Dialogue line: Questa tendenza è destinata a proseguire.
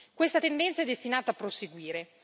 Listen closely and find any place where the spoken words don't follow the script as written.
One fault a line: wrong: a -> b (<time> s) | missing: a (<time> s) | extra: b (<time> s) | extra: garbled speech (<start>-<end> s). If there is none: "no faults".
no faults